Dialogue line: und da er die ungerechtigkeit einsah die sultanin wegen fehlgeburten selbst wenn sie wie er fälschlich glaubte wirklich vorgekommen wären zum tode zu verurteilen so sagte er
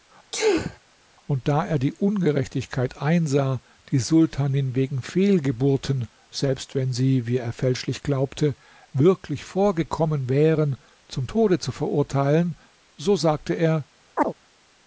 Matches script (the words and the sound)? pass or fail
fail